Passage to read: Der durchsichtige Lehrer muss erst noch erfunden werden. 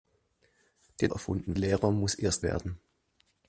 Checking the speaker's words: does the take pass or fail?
fail